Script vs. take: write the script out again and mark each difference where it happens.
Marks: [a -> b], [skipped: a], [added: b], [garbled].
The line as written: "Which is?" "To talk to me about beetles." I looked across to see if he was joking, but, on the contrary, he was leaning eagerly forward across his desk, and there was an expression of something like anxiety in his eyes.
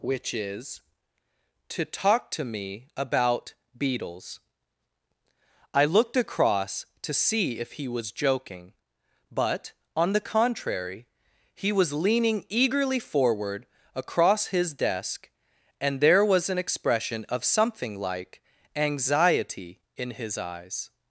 "Which is?" "To talk to me about beetles." I looked across to see if he was joking, but, on the contrary, he was leaning eagerly forward across his desk, and there was an expression of something like anxiety in his eyes.